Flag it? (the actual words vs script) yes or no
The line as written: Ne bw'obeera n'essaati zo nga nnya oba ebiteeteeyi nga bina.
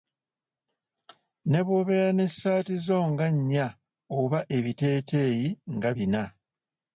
no